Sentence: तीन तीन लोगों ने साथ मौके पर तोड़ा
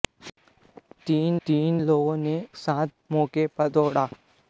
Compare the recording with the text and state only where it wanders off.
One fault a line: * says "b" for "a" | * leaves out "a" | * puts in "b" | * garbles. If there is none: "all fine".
all fine